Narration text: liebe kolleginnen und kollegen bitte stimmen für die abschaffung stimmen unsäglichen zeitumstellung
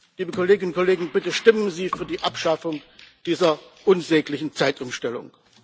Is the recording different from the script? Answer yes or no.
yes